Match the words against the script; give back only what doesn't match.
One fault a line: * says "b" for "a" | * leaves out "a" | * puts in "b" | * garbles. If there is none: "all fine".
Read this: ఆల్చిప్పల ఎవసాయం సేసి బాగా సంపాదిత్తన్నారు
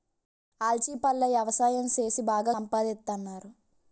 all fine